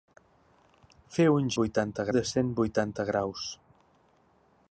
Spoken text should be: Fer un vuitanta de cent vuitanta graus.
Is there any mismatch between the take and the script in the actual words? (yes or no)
no